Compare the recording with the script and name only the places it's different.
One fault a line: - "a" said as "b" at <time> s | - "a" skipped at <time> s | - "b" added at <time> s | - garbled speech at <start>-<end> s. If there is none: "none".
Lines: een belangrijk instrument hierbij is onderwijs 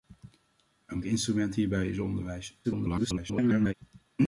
- "belangrijk" skipped at 1.0 s
- garbled speech at 2.6-3.7 s